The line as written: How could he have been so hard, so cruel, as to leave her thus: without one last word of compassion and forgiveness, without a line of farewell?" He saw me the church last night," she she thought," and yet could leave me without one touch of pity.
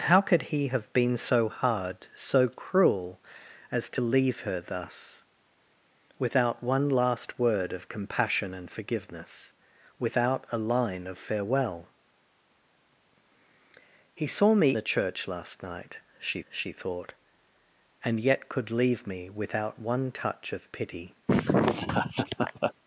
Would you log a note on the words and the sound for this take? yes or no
yes